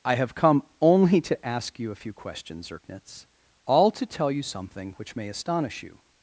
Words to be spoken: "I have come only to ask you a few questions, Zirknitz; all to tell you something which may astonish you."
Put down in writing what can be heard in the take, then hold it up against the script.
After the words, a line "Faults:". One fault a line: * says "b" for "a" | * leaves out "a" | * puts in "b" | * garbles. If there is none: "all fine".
"I have come only to ask you a few questions, Zirknitz; all to tell you something which may astonish you."
Faults:
all fine